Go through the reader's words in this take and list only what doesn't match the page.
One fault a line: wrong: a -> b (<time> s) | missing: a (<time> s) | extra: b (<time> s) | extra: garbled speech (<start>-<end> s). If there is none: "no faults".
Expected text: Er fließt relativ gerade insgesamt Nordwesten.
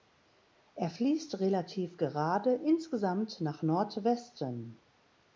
extra: nach (3.4 s)